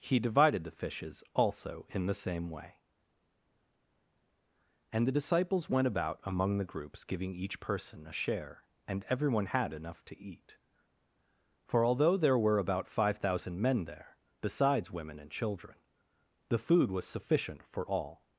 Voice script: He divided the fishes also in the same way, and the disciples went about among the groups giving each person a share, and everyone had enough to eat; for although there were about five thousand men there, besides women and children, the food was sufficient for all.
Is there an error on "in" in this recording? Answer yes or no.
no